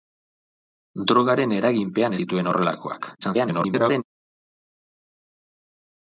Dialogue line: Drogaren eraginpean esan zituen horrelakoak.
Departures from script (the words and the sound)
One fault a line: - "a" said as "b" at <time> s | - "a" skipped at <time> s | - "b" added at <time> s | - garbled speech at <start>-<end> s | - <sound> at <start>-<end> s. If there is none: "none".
- "esan" skipped at 2.2 s
- garbled speech at 3.2-4.0 s